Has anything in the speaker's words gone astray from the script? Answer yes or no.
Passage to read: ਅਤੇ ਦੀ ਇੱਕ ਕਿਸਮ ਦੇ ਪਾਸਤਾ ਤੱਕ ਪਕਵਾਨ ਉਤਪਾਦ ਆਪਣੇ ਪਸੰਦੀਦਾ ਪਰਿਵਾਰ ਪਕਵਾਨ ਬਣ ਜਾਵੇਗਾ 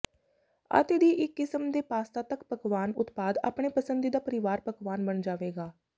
no